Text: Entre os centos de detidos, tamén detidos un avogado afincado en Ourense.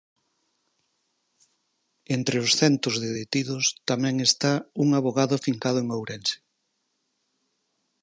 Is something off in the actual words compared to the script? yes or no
yes